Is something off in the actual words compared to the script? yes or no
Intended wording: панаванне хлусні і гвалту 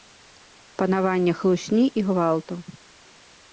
no